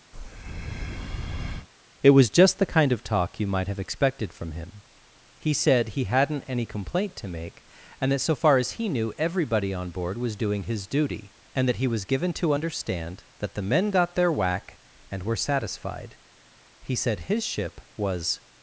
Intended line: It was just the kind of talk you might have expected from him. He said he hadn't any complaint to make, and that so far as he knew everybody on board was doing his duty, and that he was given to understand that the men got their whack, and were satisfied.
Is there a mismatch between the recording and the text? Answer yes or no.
yes